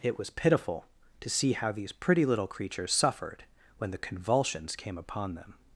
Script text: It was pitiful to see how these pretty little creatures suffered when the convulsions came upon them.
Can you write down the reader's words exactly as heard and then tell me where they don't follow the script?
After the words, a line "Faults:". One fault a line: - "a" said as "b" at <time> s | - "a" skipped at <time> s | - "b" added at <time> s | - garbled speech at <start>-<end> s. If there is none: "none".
It was pitiful to see how these pretty little creatures suffered when the convulsions came upon them.
Faults:
none